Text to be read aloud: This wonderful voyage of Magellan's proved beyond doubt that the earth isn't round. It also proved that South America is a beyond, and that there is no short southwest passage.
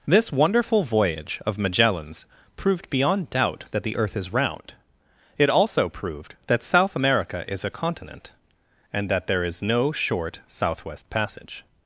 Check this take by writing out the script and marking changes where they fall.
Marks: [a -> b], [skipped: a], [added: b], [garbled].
This wonderful voyage of Magellan's proved beyond doubt that the earth [isn't -> is] round. It also proved that South America is a [beyond, -> continent] and that there is no short southwest passage.